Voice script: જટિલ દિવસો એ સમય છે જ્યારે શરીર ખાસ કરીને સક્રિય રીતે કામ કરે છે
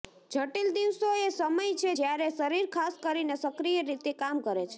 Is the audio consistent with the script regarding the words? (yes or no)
yes